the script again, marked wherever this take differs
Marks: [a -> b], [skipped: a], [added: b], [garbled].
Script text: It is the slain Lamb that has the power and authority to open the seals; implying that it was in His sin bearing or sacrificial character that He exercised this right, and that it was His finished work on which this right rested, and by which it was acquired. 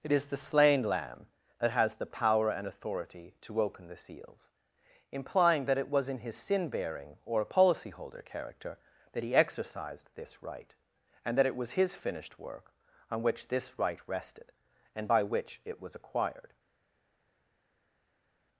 It is the slain Lamb that has the power and authority to open the seals; implying that it was in His sin bearing or [sacrificial -> policyholder] character that He exercised this right, and that it was His finished work on which this right rested, and by which it was acquired.